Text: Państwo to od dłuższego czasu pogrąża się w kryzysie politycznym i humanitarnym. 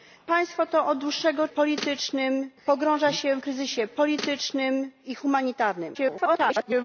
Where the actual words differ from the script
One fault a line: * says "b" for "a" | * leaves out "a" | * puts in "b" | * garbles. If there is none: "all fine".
* says "politycznym" for "czasu"
* leaves out "w"
* garbles